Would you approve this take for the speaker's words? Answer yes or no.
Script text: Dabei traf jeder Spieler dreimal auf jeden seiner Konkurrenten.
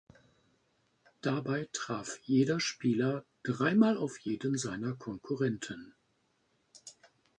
yes